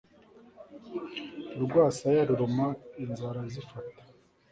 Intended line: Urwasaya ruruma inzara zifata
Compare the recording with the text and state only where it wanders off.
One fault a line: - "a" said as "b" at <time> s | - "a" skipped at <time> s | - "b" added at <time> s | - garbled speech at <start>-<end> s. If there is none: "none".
none